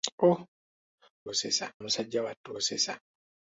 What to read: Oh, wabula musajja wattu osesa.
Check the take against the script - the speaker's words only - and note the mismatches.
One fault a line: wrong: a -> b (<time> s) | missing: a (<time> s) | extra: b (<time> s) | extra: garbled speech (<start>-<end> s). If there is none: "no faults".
wrong: wabula -> osesa (1.3 s)